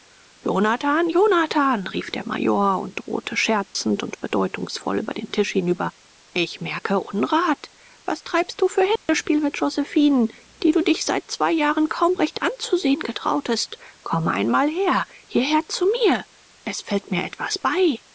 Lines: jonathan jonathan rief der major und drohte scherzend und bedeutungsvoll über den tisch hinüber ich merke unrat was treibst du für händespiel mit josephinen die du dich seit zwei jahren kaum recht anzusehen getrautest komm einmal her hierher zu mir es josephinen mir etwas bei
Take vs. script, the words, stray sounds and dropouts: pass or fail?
fail